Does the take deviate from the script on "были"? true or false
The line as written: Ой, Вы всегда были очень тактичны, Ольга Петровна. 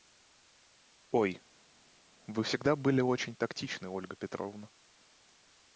false